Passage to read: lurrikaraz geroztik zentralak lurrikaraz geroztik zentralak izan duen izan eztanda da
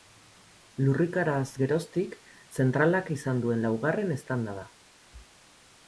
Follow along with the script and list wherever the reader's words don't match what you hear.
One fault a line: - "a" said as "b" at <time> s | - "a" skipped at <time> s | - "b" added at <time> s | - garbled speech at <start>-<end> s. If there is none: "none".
- "lurrikaraz geroztik zentralak" skipped at 3.1 s
- "izan" said as "laugarren" at 3.7 s